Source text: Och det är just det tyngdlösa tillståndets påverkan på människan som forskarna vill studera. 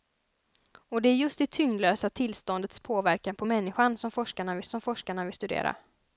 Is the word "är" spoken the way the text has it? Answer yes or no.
yes